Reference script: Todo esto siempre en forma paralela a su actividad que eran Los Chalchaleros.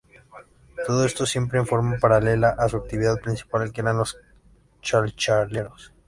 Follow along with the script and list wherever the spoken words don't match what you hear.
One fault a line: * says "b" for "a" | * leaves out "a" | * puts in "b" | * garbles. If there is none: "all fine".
* puts in "principal"